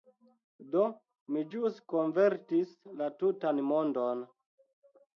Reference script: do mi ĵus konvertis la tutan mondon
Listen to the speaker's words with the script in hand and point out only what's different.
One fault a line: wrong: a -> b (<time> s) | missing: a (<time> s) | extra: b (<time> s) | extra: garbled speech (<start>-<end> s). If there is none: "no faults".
no faults